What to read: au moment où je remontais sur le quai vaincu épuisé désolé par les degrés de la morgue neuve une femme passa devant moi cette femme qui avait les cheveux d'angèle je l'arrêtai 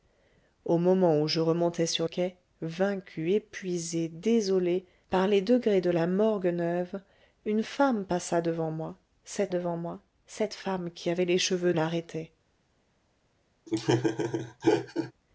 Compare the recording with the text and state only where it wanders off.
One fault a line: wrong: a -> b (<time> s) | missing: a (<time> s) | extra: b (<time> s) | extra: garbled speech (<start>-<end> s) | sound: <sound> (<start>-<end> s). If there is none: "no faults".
missing: le (2.1 s)
extra: devant moi cette (9.5 s)
missing: d'angèle je (11.7 s)
sound: laugh (13.7-15.1 s)